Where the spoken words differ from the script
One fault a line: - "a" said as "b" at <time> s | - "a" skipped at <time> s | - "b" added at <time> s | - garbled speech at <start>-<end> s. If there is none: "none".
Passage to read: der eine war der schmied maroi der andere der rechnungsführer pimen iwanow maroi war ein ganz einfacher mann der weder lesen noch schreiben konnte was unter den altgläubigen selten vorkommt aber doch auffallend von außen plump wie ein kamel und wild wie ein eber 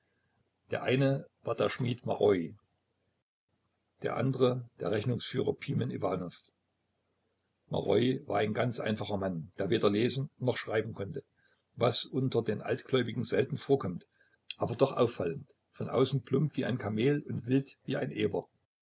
none